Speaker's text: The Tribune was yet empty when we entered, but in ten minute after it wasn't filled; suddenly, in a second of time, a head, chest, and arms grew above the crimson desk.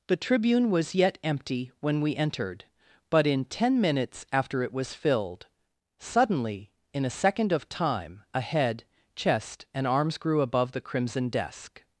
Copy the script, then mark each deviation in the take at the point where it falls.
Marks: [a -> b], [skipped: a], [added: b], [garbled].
The Tribune was yet empty when we entered, but in ten [minute -> minutes] after it [wasn't -> was] filled; suddenly, in a second of time, a head, chest, and arms grew above the crimson desk.